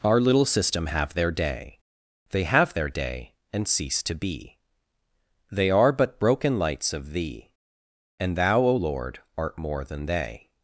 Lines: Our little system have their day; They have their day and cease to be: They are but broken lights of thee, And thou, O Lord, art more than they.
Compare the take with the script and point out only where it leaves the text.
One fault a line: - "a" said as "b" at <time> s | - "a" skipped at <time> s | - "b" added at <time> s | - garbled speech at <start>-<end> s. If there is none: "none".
none